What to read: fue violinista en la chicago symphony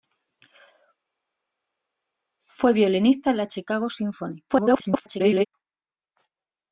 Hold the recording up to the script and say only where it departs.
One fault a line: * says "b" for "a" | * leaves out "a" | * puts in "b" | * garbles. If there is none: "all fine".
* garbles